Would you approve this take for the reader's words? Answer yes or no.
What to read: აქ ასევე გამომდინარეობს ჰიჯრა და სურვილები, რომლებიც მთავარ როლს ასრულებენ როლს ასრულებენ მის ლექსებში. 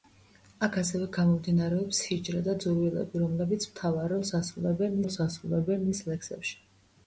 yes